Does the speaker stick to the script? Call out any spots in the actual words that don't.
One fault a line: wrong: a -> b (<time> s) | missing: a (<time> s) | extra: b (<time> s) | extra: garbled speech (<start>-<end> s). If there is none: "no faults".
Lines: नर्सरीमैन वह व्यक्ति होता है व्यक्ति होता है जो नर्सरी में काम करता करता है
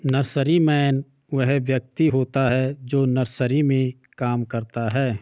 missing: व्यक्ति होता है (2.8 s)
missing: करता (4.9 s)